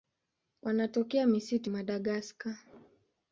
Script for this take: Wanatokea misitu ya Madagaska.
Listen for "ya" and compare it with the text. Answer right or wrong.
wrong